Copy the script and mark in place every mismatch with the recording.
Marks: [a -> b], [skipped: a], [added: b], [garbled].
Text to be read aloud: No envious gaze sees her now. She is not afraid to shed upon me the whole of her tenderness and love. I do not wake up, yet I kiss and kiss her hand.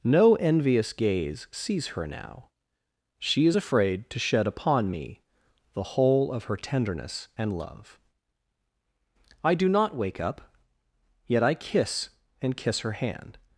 No envious gaze sees her now. She is [skipped: not] afraid to shed upon me the whole of her tenderness and love. I do not wake up, yet I kiss and kiss her hand.